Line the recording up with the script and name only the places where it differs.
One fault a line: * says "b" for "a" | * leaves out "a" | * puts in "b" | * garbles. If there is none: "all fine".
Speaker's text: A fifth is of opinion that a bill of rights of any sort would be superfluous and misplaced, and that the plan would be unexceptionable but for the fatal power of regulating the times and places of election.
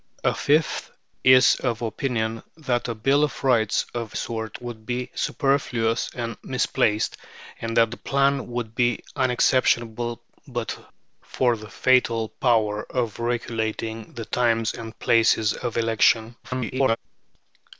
* leaves out "any"
* garbles